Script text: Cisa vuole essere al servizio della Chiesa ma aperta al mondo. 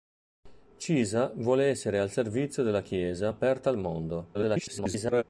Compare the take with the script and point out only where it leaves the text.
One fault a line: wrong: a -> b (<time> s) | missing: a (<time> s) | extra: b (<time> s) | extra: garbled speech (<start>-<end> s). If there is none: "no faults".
missing: ma (3.3 s)
extra: garbled speech (4.3-5.2 s)